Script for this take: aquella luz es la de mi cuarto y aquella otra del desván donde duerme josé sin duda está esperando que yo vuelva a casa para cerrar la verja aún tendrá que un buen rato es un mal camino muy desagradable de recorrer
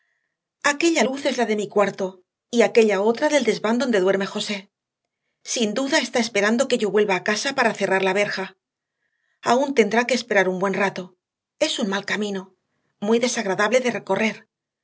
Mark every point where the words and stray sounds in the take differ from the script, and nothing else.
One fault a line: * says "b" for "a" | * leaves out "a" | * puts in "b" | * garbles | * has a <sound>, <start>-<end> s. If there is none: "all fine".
* puts in "esperar"